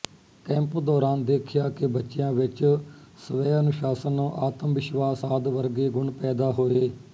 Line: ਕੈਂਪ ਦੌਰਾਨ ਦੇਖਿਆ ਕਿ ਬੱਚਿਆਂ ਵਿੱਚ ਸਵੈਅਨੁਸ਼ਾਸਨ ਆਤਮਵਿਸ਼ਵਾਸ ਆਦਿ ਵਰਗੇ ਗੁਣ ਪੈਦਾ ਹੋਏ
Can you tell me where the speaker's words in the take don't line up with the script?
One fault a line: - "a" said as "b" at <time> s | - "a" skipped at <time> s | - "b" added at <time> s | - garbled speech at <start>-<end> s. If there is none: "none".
none